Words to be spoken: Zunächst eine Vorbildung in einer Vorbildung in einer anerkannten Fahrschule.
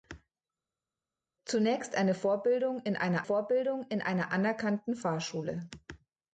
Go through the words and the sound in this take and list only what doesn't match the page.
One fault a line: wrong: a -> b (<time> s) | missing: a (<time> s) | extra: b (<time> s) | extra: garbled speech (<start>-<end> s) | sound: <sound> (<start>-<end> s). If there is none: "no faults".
no faults